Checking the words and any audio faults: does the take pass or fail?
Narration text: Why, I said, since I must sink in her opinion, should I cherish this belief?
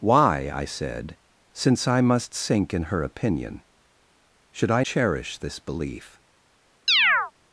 fail